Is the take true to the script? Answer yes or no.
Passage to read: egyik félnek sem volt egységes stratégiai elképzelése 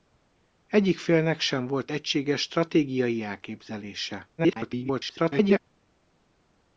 no